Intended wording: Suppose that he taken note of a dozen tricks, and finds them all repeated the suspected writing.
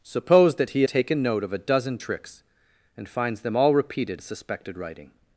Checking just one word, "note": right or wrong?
right